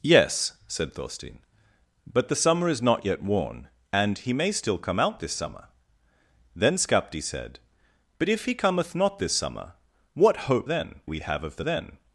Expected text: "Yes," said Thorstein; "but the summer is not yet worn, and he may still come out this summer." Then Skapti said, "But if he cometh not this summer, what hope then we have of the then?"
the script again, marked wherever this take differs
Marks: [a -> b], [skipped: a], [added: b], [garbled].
"Yes," said Thorstein; "but the summer is not yet worn, and he may still come out this summer." Then Skapti said, "But if he cometh not this summer, what hope then we have of the then?"